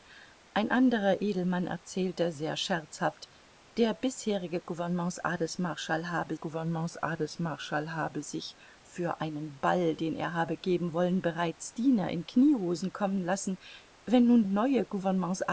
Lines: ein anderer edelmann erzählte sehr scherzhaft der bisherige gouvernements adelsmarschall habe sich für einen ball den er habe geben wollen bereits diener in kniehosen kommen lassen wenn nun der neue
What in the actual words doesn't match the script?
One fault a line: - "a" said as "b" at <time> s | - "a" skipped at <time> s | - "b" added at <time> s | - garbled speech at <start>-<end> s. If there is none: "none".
- "gouvernements adelsmarschall habe" added at 6.3 s
- "der" skipped at 14.4 s